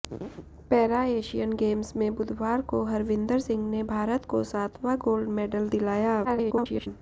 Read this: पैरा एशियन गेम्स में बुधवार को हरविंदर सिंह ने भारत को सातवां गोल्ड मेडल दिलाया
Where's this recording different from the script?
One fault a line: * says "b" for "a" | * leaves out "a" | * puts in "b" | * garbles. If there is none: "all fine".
* garbles